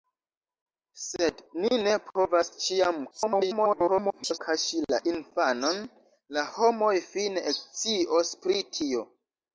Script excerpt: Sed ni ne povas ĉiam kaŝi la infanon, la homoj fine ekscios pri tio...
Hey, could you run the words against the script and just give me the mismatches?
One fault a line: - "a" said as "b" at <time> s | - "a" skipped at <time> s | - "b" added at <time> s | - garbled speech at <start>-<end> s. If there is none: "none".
- garbled speech at 3.1-4.4 s